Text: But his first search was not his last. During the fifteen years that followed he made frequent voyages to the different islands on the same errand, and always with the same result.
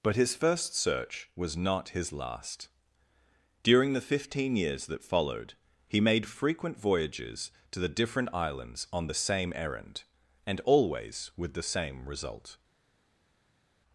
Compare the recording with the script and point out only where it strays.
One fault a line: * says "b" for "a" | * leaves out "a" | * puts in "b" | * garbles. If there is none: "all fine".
all fine